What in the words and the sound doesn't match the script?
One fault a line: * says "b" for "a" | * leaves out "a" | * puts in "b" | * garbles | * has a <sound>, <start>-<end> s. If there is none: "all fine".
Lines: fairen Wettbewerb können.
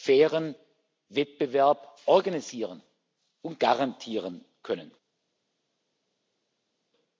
* puts in "organisieren und garantieren"